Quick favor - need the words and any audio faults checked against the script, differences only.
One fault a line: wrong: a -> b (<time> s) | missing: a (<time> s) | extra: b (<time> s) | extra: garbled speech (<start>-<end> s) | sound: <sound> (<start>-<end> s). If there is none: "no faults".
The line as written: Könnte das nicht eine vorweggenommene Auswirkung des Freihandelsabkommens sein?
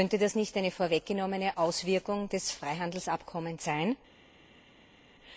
no faults